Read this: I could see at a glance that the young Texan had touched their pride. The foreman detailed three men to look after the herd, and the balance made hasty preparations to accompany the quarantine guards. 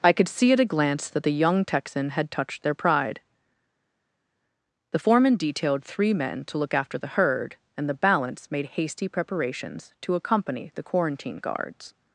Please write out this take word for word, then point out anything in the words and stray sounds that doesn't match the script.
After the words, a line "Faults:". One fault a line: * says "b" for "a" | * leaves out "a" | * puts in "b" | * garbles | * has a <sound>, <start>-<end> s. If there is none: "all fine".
I could see at a glance that the young Texan had touched their pride. The foreman detailed three men to look after the herd, and the balance made hasty preparations to accompany the quarantine guards.
Faults:
all fine